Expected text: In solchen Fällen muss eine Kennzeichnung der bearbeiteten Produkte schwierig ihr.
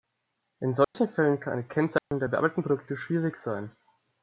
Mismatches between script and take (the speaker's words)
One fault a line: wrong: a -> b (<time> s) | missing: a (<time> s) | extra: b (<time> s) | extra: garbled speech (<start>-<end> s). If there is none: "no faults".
wrong: muss -> kann (1.4 s)
wrong: ihr -> sein (3.4 s)